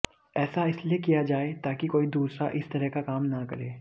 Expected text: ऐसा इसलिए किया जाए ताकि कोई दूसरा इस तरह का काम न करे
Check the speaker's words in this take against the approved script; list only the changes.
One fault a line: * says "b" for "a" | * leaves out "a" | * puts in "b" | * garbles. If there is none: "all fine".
all fine